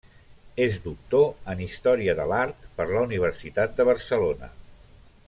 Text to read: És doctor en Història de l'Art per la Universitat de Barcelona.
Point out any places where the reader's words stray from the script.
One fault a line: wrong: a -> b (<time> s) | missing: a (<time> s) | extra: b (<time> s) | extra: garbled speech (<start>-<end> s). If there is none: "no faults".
no faults